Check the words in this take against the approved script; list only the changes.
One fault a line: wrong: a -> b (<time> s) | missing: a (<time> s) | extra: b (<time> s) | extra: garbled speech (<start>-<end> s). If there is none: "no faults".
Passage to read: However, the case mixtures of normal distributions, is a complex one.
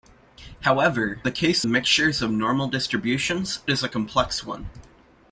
no faults